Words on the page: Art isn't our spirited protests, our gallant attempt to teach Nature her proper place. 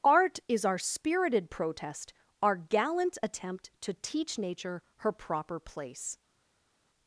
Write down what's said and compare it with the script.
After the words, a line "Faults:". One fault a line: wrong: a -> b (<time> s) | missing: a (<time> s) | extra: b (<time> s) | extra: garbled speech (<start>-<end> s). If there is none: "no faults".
Art is our spirited protest, our gallant attempt to teach Nature her proper place.
Faults:
wrong: isn't -> is (0.5 s)
wrong: protests -> protest (1.5 s)